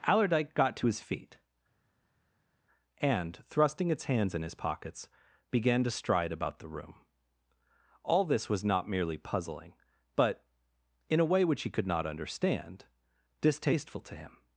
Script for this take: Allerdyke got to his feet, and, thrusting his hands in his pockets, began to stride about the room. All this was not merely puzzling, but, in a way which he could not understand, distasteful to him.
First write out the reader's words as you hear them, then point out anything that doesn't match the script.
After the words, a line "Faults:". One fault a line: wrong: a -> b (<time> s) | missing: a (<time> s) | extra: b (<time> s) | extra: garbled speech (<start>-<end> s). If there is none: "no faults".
Allerdyke got to his feet, and, thrusting its hands in his pockets, began to stride about the room. All this was not merely puzzling, but, in a way which he could not understand, distasteful to him.
Faults:
wrong: his -> its (3.9 s)